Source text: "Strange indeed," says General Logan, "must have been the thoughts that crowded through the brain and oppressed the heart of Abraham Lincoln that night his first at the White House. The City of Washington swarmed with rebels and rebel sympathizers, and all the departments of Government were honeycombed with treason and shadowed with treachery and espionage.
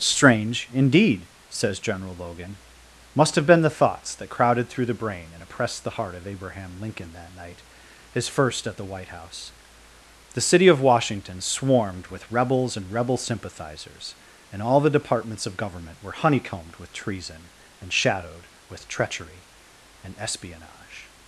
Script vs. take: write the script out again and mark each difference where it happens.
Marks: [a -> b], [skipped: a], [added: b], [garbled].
"Strange indeed," says General Logan, "must have been the thoughts that crowded through the brain and oppressed the heart of Abraham Lincoln that night his first at the White House. The City of Washington swarmed with rebels and rebel sympathizers, and all the departments of Government were honeycombed with treason and shadowed with treachery and espionage.